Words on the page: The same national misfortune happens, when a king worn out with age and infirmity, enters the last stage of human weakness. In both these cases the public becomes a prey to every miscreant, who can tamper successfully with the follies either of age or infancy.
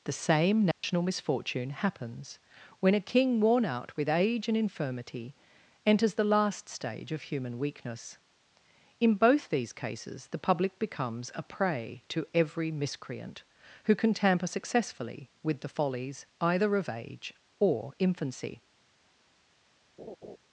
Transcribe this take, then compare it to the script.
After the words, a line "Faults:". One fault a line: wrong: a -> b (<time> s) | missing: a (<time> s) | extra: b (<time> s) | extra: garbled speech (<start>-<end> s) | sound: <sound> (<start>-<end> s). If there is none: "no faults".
The same national misfortune happens, when a king worn out with age and infirmity, enters the last stage of human weakness. In both these cases the public becomes a prey to every miscreant, who can tamper successfully with the follies either of age or infancy.
Faults:
sound: dropout (0.7-0.8 s)
sound: laugh (20.0-20.4 s)